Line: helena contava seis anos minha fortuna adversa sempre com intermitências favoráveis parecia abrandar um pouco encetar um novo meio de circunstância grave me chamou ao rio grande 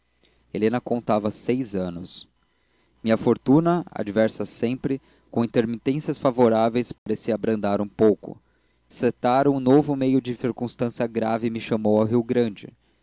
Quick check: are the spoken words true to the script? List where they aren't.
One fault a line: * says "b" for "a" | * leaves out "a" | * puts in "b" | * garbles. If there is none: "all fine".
all fine